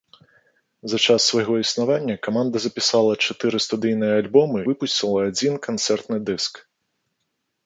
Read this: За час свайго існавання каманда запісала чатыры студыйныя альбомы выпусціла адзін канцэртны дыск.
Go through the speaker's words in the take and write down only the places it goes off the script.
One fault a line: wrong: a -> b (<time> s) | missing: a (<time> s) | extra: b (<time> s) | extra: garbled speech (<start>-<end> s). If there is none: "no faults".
no faults